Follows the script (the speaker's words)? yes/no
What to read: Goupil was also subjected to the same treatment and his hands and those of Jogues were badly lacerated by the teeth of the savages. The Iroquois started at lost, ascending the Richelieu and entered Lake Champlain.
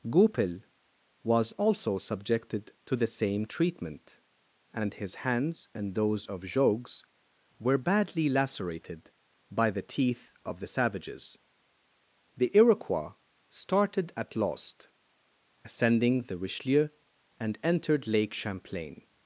yes